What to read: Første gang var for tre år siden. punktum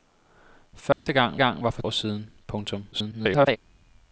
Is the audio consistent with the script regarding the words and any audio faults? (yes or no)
no